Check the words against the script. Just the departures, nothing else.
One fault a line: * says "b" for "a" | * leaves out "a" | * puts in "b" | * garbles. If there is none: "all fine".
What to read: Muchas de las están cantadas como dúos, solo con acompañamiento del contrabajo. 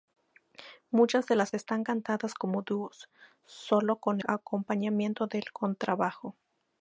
all fine